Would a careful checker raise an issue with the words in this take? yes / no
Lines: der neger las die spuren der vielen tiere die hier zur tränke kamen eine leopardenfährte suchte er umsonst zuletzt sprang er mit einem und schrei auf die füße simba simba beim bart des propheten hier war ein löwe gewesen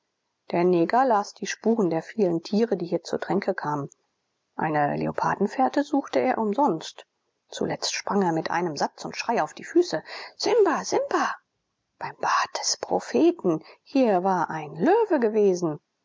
yes